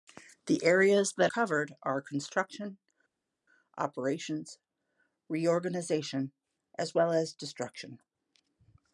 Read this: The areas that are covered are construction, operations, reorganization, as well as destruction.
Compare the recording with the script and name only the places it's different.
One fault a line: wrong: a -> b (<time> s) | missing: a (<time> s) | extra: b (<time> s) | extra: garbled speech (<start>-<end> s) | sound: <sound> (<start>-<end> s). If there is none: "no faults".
missing: are (1.3 s)